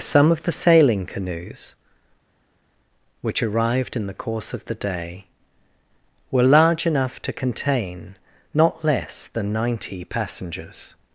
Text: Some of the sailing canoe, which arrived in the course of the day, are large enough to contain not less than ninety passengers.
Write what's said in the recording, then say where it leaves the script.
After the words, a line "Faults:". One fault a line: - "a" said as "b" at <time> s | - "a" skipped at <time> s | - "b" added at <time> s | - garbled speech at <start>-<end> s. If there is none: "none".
Some of the sailing canoes, which arrived in the course of the day, were large enough to contain not less than ninety passengers.
Faults:
- "canoe" said as "canoes" at 1.1 s
- "are" said as "were" at 6.3 s